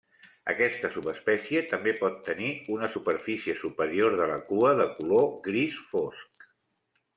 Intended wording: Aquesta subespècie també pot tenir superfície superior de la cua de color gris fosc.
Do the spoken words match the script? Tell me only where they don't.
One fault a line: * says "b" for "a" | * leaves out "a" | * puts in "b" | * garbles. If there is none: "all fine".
* puts in "una"